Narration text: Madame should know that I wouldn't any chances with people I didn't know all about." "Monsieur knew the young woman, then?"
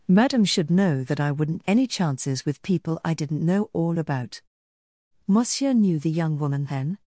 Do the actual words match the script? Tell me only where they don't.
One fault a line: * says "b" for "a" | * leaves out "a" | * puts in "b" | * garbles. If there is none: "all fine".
all fine